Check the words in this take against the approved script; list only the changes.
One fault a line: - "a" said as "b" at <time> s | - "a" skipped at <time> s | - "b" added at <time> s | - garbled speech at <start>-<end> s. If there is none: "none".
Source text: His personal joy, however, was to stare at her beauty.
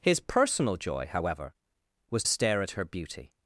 - "to" skipped at 2.2 s